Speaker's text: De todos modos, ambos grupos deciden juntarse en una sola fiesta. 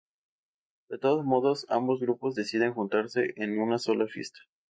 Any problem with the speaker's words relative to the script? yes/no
no